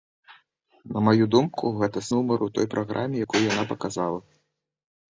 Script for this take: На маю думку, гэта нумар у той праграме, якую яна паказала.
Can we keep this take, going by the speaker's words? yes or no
yes